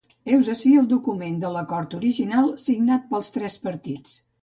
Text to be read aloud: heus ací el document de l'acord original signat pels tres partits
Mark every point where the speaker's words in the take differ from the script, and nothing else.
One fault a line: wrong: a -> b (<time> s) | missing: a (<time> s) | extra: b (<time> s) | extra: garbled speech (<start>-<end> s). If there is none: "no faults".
no faults